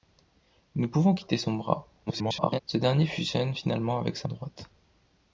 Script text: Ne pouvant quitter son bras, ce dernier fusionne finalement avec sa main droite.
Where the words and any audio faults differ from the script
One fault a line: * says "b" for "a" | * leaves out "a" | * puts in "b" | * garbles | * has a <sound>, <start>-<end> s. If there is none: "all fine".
* garbles
* leaves out "main"